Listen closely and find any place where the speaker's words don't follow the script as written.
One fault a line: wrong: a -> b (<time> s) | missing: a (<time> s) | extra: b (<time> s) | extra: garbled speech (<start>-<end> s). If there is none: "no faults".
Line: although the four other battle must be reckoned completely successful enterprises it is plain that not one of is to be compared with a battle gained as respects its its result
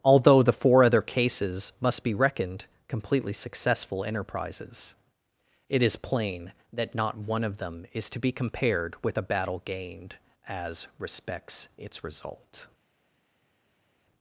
wrong: battle -> cases (1.0 s)
extra: them (7.6 s)
missing: its (12.0 s)